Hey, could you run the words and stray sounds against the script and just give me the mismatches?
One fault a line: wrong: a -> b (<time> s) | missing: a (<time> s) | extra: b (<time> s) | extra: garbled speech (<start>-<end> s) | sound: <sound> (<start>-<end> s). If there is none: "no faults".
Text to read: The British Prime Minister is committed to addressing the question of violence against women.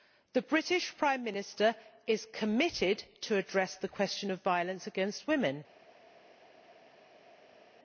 no faults